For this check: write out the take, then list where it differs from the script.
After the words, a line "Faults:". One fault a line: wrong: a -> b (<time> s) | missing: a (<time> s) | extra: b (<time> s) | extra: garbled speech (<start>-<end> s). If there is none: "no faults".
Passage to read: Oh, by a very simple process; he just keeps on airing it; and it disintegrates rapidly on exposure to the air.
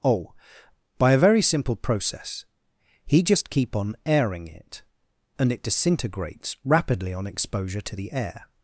Oh, by a very simple process; he just keep on airing it; and it disintegrates rapidly on exposure to the air.
Faults:
wrong: keeps -> keep (3.5 s)